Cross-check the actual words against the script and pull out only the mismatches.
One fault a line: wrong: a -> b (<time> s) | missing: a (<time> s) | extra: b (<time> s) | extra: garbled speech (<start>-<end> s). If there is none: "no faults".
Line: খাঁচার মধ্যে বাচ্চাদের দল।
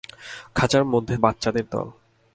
no faults